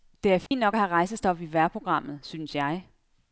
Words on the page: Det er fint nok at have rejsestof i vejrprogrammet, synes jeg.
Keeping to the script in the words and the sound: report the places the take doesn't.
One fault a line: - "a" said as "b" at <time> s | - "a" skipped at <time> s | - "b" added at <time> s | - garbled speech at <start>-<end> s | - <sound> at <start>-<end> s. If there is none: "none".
- dropout at 0.5-0.5 s